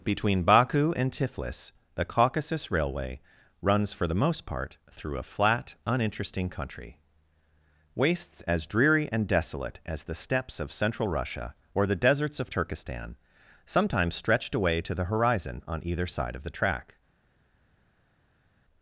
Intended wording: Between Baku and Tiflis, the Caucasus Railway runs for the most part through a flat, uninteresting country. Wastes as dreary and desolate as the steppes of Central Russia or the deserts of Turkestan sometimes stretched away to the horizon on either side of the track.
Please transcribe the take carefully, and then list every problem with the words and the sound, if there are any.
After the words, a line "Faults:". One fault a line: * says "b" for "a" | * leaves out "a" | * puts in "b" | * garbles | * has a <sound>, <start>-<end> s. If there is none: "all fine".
Between Baku and Tiflis, the Caucasus Railway runs for the most part through a flat, uninteresting country. Wastes as dreary and desolate as the steppes of Central Russia or the deserts of Turkestan sometimes stretched away to the horizon on either side of the track.
Faults:
all fine